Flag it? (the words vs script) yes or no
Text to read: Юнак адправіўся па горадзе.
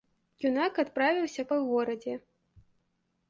no